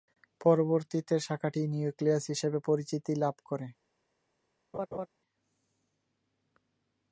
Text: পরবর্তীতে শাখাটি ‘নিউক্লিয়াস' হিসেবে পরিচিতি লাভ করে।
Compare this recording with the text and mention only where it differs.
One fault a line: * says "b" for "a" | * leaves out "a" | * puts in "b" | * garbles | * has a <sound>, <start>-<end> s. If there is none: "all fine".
* has a laugh, 4.7-5.1 s